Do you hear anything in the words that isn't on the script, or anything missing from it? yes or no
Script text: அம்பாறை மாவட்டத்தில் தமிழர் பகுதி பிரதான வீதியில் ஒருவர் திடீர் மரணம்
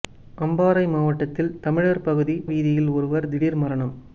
yes